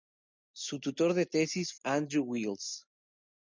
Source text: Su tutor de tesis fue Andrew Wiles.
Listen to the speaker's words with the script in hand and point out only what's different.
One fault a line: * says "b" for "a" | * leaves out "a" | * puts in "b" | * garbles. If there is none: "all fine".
* leaves out "fue"